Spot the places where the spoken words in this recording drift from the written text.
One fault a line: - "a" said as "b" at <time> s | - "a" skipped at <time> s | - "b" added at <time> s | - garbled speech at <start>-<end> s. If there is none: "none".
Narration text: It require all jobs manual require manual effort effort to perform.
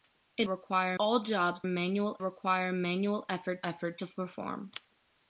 none